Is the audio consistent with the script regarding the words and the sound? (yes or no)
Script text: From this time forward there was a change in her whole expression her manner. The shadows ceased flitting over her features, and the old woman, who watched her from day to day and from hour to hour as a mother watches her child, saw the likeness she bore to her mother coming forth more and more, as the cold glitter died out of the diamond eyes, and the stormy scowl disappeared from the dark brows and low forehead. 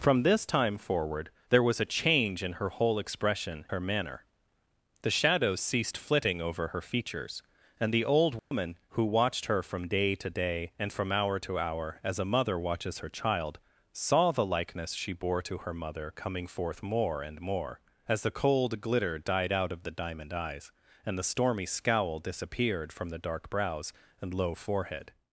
no